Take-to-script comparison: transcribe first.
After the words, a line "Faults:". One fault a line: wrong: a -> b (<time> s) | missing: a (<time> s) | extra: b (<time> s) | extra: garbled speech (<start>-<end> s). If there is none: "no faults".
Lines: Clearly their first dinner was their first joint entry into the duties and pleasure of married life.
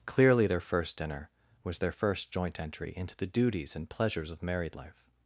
Clearly their first dinner was their first joint entry into the duties and pleasures of married life.
Faults:
wrong: pleasure -> pleasures (3.9 s)